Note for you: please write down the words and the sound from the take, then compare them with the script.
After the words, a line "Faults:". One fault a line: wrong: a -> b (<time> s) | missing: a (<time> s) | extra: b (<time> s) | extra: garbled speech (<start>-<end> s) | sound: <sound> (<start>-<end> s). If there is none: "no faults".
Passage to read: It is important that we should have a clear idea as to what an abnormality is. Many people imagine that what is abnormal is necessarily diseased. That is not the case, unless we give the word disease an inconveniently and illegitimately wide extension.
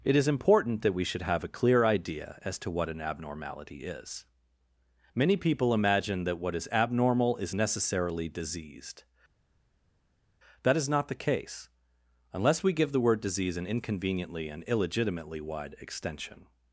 It is important that we should have a clear idea as to what an abnormality is. Many people imagine that what is abnormal is necessarily diseased. That is not the case, unless we give the word disease an inconveniently and illegitimately wide extension.
Faults:
no faults